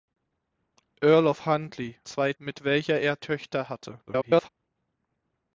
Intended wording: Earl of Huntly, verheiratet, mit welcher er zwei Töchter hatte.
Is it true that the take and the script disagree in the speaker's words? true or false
true